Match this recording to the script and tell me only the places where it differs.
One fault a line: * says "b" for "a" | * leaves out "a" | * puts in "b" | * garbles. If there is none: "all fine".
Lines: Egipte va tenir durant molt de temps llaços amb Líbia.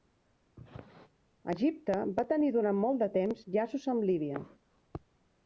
all fine